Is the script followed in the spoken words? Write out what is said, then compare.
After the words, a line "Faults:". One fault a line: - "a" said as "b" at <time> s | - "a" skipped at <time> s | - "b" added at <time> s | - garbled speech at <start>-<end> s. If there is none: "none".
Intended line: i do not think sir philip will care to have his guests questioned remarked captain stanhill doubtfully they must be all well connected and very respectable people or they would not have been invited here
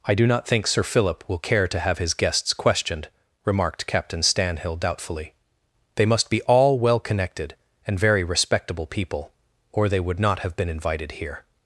i do not think sir philip will care to have his guests questioned remarked captain stanhill doubtfully they must be all well connected and very respectable people or they would not have been invited here
Faults:
none